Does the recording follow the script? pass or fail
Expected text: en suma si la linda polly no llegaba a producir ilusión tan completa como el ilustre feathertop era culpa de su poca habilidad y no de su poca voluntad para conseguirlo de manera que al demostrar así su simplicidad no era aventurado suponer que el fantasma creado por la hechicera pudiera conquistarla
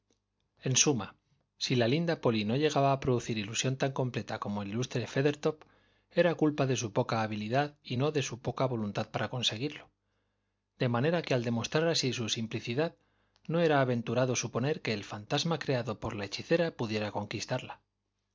pass